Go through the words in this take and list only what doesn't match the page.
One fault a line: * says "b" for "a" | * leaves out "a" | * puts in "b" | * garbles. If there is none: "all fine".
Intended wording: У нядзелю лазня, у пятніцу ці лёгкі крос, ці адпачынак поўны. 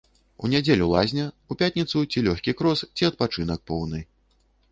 all fine